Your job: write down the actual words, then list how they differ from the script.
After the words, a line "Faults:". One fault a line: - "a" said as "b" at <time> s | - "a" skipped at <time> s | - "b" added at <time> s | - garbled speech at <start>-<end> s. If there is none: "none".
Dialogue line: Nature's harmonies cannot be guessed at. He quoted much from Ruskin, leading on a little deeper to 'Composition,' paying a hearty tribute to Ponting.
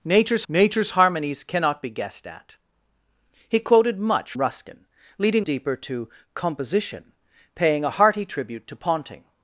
Nature's nature's harmonies cannot be guessed at. He quoted much Ruskin, leading deeper to 'Composition,' paying a hearty tribute to Ponting.
Faults:
- "nature's" added at 0.5 s
- "from" skipped at 4.3 s
- "on a little" skipped at 5.5 s